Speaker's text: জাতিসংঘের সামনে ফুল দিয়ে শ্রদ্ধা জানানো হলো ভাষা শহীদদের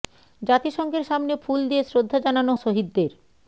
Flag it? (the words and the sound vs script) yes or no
yes